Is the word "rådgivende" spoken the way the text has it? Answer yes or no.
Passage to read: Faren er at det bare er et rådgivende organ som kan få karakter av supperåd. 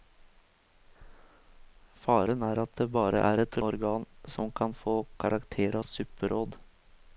no